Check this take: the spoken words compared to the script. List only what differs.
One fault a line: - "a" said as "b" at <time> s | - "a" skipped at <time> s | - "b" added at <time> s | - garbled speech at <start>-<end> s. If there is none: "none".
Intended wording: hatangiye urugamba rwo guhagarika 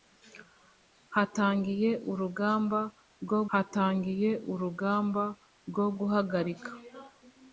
- "hatangiye urugamba rwo" added at 3.5 s